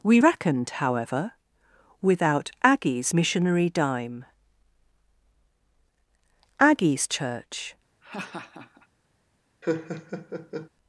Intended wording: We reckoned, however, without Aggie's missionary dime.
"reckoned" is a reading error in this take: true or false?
false